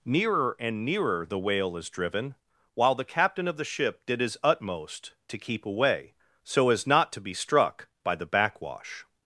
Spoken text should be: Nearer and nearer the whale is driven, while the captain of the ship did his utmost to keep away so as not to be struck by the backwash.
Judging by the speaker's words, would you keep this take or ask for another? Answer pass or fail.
pass